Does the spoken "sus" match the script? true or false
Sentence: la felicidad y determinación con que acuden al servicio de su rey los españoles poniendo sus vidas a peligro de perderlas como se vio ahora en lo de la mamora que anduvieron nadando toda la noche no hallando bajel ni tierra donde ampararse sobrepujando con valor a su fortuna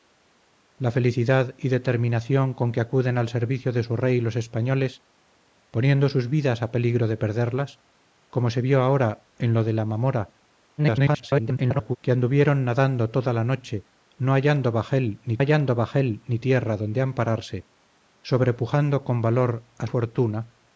true